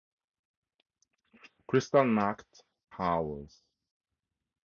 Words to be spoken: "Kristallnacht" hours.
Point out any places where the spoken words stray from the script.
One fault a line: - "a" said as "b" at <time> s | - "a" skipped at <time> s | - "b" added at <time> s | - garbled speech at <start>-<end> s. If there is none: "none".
none